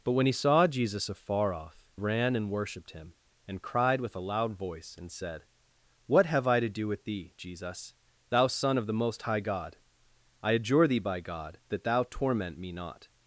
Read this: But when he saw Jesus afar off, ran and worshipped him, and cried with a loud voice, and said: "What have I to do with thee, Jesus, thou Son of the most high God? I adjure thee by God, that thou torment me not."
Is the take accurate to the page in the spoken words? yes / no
yes